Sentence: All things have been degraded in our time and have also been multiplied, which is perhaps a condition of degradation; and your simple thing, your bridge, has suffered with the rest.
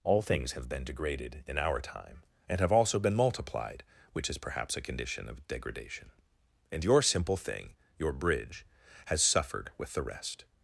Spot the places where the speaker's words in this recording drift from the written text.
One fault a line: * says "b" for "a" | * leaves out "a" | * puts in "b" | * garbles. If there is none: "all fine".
all fine